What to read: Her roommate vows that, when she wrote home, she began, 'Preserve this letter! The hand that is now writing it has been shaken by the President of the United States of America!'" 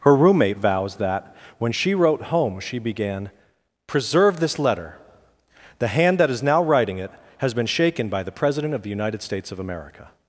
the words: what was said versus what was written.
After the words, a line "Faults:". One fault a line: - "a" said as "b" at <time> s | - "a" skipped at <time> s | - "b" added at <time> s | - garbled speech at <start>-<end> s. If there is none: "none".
Her roommate vows that, when she wrote home, she began, 'Preserve this letter! The hand that is now writing it has been shaken by the President of the United States of America!'"
Faults:
none